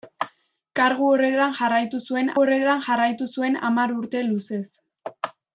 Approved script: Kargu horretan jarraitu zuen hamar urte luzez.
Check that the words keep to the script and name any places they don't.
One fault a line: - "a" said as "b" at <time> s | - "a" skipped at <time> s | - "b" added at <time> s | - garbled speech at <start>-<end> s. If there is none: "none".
- "horretan jarraitu zuen" added at 2.4 s